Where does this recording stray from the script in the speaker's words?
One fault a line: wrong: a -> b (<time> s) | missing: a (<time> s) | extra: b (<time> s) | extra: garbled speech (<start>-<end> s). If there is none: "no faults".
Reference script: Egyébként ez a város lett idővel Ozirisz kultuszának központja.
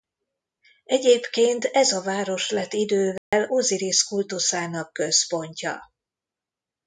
no faults